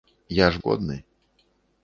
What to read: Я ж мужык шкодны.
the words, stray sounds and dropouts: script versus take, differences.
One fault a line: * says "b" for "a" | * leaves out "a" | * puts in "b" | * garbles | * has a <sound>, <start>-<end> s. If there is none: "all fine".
* leaves out "мужык"